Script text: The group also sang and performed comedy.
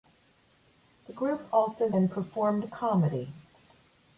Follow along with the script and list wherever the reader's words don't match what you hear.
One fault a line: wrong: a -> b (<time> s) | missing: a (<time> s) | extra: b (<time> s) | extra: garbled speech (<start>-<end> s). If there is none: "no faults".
missing: sang (1.9 s)